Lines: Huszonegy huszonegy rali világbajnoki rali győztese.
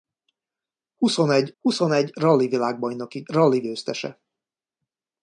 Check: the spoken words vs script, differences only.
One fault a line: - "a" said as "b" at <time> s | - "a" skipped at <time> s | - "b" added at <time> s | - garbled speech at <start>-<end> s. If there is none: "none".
none